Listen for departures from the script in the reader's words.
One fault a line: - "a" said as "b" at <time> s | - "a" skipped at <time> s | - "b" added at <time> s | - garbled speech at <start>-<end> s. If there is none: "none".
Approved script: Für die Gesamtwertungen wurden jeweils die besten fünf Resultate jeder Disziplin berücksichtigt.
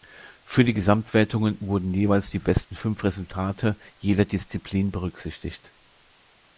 none